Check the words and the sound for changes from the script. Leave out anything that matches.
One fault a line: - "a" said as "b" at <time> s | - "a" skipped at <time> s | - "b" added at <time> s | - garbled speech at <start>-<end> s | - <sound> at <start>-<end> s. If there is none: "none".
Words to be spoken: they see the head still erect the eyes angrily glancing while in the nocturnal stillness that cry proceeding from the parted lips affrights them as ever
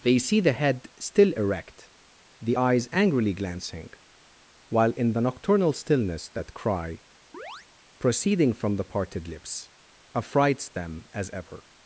- chirp at 7.3-7.7 s